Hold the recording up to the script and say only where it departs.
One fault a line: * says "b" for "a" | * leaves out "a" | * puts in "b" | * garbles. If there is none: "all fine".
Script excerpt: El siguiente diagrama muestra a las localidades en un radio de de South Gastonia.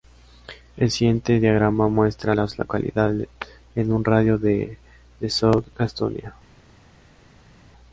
all fine